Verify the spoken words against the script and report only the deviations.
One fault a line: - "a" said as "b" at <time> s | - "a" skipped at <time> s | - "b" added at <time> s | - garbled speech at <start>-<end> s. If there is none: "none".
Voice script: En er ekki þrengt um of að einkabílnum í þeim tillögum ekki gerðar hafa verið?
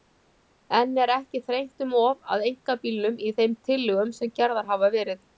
- "ekki" said as "sem" at 4.2 s